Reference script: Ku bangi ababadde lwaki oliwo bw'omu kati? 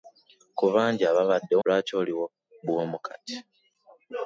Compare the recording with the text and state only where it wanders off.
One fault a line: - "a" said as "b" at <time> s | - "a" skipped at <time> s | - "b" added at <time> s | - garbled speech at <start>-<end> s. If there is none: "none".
none